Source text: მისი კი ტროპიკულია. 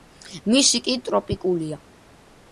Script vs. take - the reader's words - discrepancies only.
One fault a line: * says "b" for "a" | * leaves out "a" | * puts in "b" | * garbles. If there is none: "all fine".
all fine